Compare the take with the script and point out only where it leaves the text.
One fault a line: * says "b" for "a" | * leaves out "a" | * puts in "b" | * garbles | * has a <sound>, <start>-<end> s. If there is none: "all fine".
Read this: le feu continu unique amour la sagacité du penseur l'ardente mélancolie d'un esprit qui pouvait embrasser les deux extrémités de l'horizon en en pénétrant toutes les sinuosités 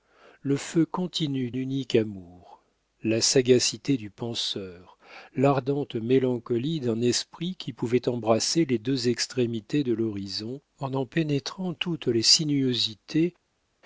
all fine